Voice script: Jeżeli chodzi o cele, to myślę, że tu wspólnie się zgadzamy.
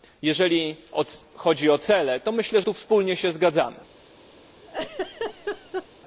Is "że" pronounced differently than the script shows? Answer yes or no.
yes